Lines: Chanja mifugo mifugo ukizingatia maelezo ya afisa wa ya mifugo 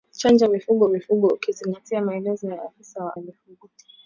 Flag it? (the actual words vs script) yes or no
no